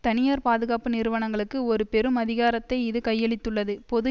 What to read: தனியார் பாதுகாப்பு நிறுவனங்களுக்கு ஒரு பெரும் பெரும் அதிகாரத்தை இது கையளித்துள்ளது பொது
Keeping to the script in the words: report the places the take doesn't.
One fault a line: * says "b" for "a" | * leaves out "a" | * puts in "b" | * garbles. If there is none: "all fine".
* leaves out "பெரும்"